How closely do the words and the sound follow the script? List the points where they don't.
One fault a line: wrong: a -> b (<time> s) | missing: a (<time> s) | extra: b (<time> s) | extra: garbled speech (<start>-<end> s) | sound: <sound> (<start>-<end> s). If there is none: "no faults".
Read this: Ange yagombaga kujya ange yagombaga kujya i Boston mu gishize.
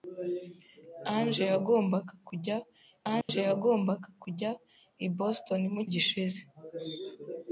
sound: dropout (3.2-3.3 s)